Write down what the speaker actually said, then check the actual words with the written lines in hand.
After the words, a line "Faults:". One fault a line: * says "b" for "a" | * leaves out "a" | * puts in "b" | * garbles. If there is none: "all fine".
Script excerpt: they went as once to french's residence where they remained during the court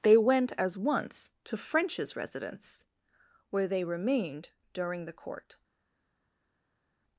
they went as once to french's residence where they remained during the court
Faults:
all fine